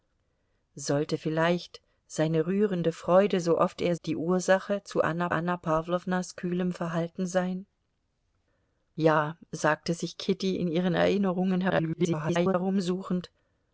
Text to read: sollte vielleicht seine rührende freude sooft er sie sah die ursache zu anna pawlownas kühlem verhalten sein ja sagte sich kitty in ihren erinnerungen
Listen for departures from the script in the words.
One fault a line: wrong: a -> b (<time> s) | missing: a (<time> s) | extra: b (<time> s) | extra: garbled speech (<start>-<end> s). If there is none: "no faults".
missing: sie sah (4.0 s)
extra: anna (5.3 s)
extra: garbled speech (11.7-12.5 s)